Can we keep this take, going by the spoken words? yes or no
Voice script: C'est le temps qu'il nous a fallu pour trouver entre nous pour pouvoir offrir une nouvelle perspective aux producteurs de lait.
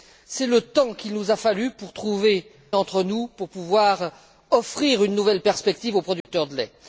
yes